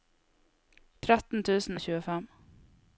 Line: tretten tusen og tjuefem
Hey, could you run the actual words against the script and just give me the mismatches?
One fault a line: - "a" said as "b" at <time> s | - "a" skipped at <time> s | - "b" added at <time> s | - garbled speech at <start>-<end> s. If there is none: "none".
none